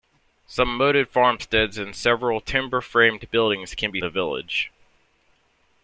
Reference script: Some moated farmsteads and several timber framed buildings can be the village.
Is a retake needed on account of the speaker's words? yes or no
no